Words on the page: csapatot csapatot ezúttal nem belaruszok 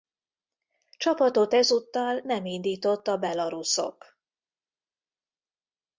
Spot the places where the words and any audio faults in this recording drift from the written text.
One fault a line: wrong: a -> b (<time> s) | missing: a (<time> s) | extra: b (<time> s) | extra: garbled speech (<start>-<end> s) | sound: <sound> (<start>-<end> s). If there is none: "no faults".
missing: csapatot (1.5 s)
extra: indított a (2.4 s)